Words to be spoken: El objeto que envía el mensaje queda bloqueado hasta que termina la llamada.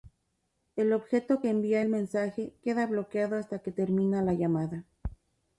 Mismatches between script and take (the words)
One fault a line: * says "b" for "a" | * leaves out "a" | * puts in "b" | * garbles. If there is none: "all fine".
all fine